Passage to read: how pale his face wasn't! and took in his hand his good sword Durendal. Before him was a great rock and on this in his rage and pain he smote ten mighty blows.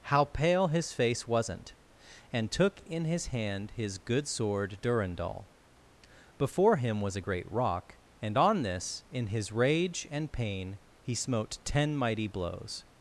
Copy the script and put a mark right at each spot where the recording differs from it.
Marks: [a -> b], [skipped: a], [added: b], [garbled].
how pale his face wasn't! and took in his hand his good sword Durendal. Before him was a great rock and on this in his rage and pain he smote ten mighty blows.